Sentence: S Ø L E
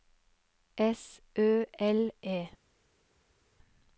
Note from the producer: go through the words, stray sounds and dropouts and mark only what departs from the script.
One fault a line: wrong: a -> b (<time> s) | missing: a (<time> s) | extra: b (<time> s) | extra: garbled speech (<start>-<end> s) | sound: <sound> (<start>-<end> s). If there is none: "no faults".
no faults